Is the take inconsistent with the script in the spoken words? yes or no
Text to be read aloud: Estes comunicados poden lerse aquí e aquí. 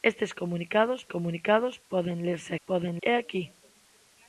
yes